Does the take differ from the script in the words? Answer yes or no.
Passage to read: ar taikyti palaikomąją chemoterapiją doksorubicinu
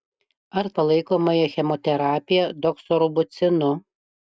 yes